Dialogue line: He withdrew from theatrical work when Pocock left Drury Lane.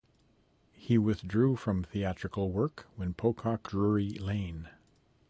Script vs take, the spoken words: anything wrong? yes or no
yes